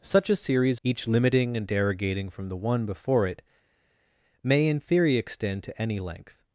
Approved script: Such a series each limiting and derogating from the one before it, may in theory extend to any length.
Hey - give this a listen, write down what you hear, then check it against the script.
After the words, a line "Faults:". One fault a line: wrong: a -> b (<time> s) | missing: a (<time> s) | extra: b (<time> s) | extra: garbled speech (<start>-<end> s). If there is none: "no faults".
Such a series each limiting and derogating from the one before it, may in theory extend to any length.
Faults:
no faults